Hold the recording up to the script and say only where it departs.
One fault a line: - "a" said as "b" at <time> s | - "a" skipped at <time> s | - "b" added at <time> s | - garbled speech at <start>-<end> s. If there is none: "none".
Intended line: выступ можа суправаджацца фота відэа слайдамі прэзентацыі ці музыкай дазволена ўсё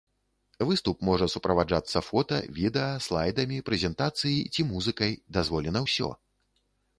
none